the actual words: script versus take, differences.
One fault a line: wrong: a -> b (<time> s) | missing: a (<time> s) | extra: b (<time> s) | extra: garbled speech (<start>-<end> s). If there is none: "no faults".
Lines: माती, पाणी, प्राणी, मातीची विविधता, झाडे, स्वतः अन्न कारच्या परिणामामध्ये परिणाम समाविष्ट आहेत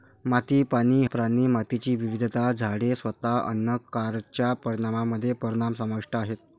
no faults